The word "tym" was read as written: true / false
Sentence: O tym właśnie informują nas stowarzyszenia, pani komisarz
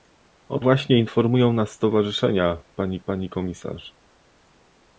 false